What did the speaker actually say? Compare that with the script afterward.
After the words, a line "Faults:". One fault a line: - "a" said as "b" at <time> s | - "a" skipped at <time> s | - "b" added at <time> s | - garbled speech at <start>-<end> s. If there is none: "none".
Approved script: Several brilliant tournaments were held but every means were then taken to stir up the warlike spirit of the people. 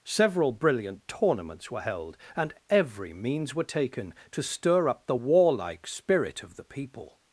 Several brilliant tournaments were held and every means were taken to stir up the warlike spirit of the people.
Faults:
- "but" said as "and" at 2.4 s
- "then" skipped at 3.6 s